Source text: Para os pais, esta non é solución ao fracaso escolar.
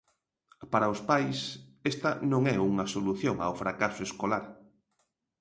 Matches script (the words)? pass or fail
fail